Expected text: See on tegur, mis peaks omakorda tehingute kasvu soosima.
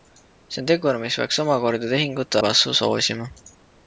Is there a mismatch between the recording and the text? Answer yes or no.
no